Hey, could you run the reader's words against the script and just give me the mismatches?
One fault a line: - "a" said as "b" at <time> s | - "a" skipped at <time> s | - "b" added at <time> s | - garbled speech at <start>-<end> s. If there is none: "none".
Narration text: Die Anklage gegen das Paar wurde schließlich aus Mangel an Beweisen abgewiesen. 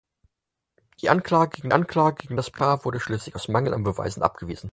- "Anklage gegen" added at 1.7 s